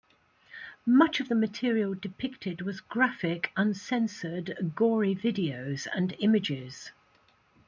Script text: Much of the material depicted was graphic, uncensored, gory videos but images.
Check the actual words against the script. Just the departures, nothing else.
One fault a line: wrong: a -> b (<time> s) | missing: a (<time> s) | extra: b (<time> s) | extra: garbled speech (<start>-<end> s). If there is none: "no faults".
wrong: but -> and (5.9 s)